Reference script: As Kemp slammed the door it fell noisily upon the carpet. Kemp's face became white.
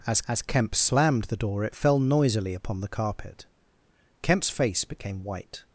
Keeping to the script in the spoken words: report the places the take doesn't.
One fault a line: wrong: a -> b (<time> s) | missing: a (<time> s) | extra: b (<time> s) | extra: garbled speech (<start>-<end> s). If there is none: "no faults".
extra: as (0.3 s)